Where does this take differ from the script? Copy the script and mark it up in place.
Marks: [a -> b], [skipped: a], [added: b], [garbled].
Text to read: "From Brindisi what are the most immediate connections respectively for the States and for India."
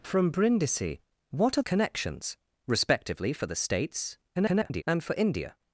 "From Brindisi what are [skipped: the most immediate] connections respectively for the States [garbled] and for India."